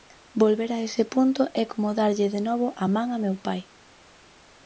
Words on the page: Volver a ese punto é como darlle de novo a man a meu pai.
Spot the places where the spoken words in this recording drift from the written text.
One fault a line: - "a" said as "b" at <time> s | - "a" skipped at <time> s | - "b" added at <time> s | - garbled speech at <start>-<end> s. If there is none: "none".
none